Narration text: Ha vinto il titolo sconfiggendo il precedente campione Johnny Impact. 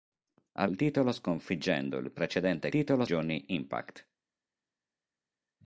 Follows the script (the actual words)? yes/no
no